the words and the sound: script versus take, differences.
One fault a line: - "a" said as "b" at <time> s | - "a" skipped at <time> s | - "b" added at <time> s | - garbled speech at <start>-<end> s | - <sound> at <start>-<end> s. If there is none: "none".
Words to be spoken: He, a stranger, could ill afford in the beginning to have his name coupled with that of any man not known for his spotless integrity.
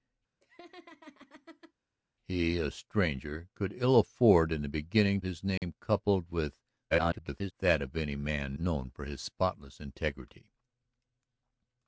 - laugh at 0.4-1.7 s
- "to have" skipped at 5.2 s
- dropout at 5.6-5.6 s
- garbled speech at 6.9-7.5 s
- "not" skipped at 8.6 s